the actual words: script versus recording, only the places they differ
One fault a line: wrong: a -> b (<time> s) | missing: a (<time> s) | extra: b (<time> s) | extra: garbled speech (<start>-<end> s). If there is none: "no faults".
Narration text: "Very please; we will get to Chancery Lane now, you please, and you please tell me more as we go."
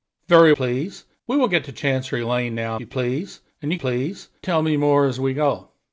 no faults